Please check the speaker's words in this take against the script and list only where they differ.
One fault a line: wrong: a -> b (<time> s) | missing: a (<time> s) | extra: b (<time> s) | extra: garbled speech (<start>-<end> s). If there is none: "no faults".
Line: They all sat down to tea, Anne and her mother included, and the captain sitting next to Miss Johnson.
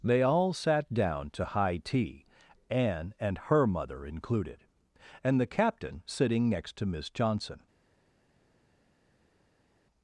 extra: high (1.4 s)